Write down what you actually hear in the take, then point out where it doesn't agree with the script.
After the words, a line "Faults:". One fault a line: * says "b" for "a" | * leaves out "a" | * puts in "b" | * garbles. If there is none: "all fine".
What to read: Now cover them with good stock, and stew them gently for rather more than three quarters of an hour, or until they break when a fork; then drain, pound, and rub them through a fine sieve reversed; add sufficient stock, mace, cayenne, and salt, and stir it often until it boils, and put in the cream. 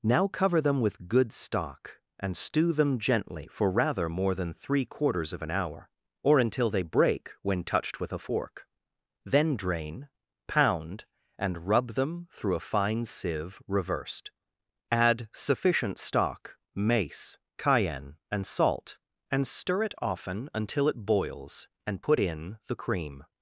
Now cover them with good stock, and stew them gently for rather more than three quarters of an hour, or until they break when touched with a fork; then drain, pound, and rub them through a fine sieve reversed; add sufficient stock, mace, cayenne, and salt, and stir it often until it boils, and put in the cream.
Faults:
* puts in "touched with"